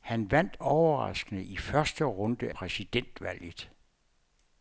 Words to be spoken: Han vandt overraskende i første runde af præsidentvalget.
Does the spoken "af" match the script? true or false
false